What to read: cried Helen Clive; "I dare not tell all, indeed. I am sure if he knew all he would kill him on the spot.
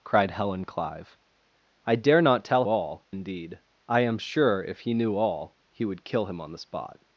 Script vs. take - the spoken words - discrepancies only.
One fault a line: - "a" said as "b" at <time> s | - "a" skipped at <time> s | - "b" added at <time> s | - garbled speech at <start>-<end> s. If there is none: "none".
none